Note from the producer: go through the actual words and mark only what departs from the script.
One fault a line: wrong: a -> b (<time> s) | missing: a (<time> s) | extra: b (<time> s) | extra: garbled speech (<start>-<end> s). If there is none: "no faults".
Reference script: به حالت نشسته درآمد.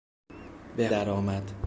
missing: حالت نشسته (0.9 s)